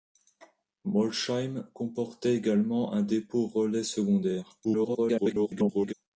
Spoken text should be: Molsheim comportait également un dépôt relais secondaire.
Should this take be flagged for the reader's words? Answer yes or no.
yes